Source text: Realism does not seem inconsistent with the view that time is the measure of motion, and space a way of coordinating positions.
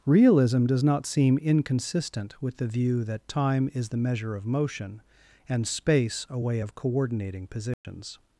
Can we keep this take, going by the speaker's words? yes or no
yes